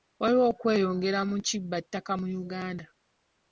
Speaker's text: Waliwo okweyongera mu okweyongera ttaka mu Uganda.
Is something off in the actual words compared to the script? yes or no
yes